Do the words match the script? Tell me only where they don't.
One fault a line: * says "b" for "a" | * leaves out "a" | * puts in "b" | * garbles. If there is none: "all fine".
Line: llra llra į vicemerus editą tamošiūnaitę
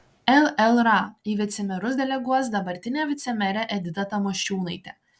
* leaves out "llra"
* puts in "deleguos dabartinę vicemerę"